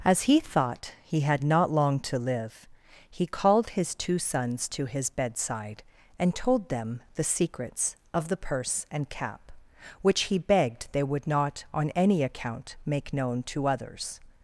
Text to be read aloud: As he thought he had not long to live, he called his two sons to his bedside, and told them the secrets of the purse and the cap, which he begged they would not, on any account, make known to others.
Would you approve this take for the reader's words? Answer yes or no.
no